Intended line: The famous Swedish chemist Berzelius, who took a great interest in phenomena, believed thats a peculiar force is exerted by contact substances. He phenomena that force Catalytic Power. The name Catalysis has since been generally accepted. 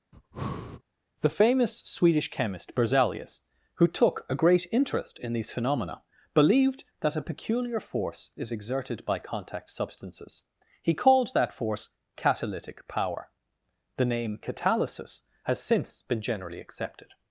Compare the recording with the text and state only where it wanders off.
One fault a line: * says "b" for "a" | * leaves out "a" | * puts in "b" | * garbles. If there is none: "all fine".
* puts in "these"
* says "that" for "thats"
* says "called" for "phenomena"